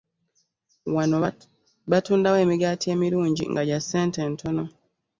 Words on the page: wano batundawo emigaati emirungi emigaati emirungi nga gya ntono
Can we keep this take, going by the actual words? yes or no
no